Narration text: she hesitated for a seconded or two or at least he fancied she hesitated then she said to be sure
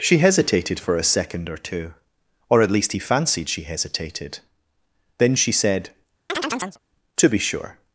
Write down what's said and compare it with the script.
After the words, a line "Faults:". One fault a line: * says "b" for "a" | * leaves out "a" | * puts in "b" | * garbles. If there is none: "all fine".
she hesitated for a second or two or at least he fancied she hesitated then she said to be sure
Faults:
* says "second" for "seconded"